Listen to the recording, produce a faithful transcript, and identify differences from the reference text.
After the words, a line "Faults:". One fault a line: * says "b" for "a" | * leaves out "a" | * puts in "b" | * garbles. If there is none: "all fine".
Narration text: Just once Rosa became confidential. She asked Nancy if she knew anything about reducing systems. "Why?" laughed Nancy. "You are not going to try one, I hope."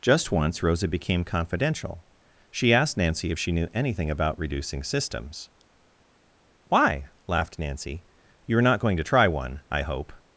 Just once Rosa became confidential. She asked Nancy if she knew anything about reducing systems. "Why?" laughed Nancy. "You are not going to try one, I hope."
Faults:
all fine